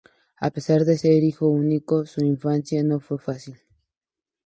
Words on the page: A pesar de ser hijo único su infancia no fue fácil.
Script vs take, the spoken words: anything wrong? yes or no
no